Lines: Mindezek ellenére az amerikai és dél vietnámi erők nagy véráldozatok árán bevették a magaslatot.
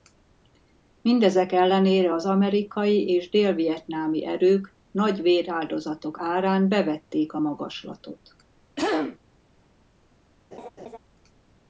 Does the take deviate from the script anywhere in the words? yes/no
no